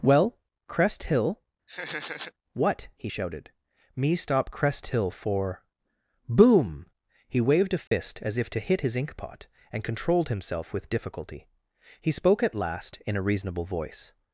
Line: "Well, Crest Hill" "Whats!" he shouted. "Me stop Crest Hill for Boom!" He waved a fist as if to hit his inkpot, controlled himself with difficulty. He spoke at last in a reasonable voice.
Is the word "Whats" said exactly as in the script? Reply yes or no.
no